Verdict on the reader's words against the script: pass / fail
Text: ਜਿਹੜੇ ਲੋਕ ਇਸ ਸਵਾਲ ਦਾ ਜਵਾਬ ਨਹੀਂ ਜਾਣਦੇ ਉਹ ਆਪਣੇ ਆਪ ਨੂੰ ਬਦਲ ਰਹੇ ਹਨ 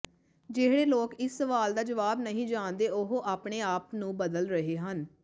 pass